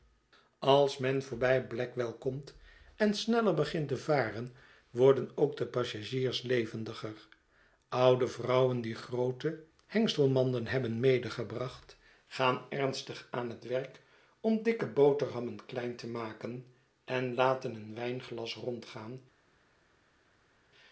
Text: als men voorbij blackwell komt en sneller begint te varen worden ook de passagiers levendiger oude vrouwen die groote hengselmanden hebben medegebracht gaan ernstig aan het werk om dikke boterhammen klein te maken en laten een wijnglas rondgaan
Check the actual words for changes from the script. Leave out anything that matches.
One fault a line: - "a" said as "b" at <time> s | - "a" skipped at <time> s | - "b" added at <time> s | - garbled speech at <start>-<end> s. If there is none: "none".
none